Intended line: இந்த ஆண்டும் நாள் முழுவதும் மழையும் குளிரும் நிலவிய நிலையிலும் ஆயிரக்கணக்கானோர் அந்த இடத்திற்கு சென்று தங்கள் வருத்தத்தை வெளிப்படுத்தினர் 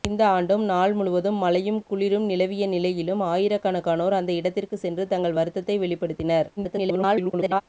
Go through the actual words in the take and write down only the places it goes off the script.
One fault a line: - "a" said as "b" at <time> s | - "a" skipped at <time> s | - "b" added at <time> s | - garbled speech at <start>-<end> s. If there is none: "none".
- garbled speech at 6.6-7.6 s